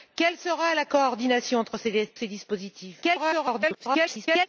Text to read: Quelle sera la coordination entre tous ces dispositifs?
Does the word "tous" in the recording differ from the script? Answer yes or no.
yes